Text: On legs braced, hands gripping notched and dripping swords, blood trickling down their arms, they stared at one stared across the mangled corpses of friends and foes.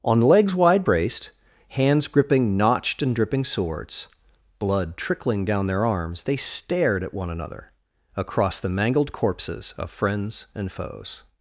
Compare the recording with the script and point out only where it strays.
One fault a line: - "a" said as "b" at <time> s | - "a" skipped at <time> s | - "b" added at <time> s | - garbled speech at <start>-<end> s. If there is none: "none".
- "wide" added at 0.6 s
- "stared" said as "another" at 7.3 s